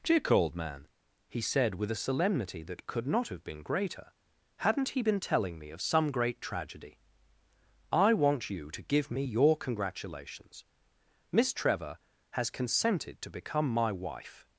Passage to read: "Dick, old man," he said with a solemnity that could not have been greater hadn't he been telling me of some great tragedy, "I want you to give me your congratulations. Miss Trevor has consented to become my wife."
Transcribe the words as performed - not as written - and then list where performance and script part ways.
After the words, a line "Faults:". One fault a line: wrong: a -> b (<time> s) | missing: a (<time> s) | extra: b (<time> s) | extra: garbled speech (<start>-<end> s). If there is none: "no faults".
"Dick, old man," he said with a solemnity that could not have been greater hadn't he been telling me of some great tragedy, "I want you to give me your congratulations. Miss Trevor has consented to become my wife."
Faults:
no faults